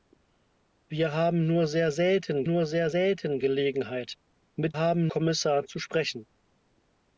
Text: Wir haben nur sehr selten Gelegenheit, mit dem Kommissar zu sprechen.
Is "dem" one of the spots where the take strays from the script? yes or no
yes